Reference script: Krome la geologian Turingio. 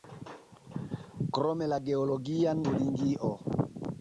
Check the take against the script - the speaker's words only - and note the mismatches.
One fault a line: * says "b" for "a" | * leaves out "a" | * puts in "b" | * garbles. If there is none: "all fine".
all fine